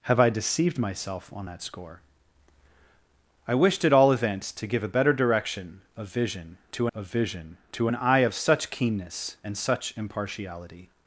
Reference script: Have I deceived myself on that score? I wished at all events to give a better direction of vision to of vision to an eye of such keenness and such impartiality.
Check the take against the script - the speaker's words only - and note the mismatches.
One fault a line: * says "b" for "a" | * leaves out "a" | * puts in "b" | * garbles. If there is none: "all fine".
all fine